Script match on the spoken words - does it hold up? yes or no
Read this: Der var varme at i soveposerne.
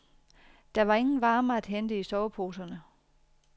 no